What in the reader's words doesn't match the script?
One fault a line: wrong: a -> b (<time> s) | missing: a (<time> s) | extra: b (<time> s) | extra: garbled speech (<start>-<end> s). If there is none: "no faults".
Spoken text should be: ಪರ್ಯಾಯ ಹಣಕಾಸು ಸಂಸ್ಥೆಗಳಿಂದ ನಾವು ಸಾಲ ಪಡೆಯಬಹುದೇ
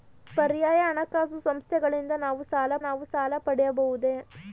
extra: ನಾವು ಸಾಲ (2.8 s)